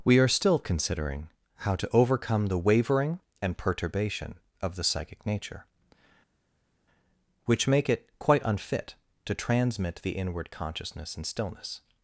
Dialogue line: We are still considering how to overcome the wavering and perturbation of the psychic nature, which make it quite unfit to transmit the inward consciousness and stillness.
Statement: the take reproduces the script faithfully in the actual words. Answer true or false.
true